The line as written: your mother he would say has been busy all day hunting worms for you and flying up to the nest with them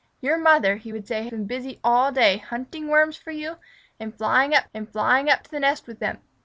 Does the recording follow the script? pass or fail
fail